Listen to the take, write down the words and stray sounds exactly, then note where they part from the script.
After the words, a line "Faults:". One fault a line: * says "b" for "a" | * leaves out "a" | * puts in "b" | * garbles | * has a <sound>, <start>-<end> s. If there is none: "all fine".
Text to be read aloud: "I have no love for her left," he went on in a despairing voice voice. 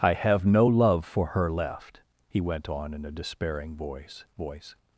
"I have no love for her left," he went on in a despairing voice voice.
Faults:
all fine